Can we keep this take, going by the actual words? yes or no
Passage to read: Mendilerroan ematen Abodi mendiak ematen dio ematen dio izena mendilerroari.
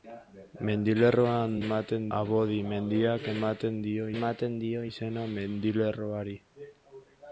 yes